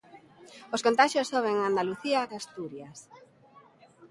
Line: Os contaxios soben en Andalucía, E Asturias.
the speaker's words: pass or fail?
pass